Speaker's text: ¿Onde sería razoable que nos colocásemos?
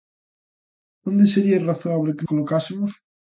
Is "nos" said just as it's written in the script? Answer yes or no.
no